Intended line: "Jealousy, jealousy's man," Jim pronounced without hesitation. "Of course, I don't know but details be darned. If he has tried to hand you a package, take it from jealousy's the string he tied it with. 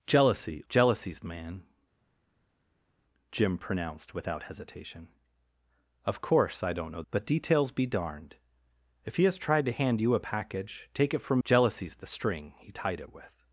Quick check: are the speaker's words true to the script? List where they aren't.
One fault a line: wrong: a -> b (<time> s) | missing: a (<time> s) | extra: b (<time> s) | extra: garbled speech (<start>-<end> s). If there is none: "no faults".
no faults